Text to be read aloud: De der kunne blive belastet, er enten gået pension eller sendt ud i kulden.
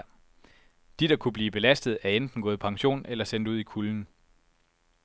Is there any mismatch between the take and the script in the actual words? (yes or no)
no